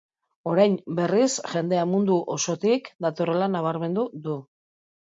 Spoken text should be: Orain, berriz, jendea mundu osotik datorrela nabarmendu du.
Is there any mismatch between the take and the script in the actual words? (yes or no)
no